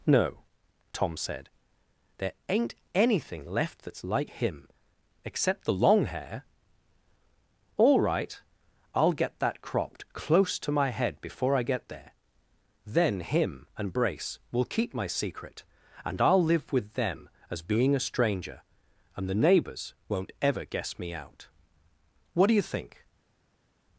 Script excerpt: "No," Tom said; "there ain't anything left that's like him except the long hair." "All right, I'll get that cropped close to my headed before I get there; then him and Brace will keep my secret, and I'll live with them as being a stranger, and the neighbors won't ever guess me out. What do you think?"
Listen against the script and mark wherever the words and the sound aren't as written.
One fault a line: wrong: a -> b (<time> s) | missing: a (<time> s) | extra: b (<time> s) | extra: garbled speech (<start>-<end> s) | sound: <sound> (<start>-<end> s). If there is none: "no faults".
wrong: headed -> head (10.9 s)